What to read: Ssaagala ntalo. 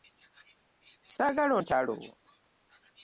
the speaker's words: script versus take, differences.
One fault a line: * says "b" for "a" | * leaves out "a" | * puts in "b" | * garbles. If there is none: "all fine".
all fine